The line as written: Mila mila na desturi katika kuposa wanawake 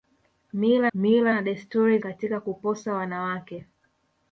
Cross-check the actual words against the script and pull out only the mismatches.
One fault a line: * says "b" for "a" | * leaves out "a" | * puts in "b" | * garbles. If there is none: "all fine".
all fine